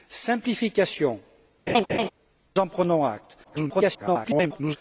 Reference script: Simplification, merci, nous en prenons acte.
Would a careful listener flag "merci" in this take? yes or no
yes